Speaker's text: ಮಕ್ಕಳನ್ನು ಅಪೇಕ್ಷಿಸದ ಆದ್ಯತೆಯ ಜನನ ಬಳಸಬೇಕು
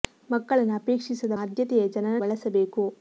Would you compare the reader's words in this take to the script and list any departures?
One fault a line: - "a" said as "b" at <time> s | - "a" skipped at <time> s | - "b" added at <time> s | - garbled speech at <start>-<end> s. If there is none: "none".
none